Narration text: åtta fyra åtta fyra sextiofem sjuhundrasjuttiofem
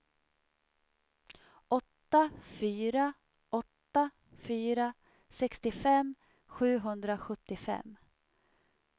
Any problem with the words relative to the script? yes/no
no